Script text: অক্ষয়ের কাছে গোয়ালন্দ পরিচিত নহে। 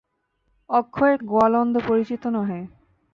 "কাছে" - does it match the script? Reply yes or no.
no